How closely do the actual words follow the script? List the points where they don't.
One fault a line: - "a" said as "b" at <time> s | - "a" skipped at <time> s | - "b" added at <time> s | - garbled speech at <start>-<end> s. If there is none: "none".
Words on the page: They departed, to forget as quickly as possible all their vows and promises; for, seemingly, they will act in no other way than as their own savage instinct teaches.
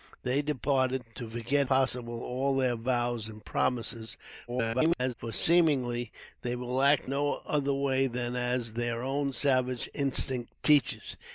- "as quickly as" skipped at 1.7 s
- garbled speech at 4.5-5.1 s
- "in" skipped at 7.1 s